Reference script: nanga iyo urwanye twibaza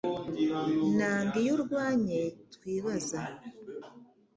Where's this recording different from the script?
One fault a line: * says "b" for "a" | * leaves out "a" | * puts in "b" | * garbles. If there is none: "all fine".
all fine